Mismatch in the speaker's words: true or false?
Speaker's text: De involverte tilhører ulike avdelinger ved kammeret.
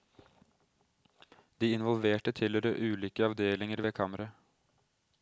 false